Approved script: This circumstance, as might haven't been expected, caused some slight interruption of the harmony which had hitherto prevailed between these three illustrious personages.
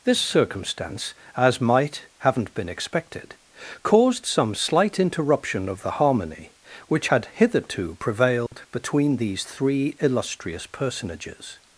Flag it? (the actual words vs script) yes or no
no